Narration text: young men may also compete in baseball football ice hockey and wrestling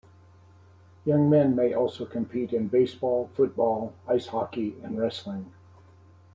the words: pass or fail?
pass